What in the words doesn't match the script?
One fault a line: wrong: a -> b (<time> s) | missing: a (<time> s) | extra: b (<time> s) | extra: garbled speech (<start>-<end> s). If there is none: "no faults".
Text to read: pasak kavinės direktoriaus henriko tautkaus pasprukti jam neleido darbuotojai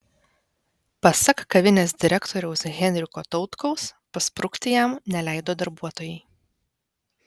no faults